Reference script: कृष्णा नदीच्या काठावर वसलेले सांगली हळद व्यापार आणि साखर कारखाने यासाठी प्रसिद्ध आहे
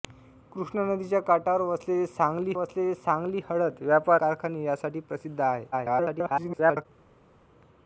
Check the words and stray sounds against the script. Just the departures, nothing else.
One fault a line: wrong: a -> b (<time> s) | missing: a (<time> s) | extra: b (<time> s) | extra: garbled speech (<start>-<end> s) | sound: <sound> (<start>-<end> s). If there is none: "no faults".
extra: वसलेले सांगली (2.5 s)
missing: आणि साखर (4.2 s)
extra: garbled speech (5.7-6.9 s)